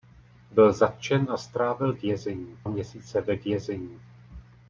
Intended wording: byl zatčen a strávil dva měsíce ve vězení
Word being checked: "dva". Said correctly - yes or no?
no